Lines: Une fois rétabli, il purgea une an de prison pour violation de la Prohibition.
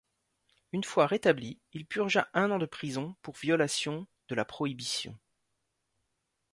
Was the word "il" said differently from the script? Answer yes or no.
no